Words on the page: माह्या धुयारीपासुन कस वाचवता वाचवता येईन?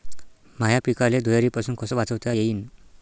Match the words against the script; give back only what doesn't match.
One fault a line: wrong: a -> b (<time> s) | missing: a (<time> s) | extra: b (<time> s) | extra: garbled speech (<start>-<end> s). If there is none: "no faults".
extra: पिकाले (0.8 s)
missing: वाचवता (2.3 s)